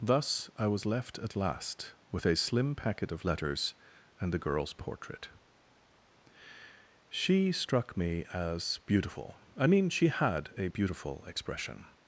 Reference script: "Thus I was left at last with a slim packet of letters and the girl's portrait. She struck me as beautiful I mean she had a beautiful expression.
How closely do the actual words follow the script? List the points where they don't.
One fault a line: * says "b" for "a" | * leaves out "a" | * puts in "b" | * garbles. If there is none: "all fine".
all fine